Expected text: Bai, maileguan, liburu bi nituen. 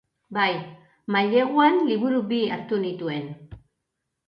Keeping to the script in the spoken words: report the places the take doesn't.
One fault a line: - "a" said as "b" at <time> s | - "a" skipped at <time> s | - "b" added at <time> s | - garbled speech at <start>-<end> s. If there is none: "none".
- "hartu" added at 2.6 s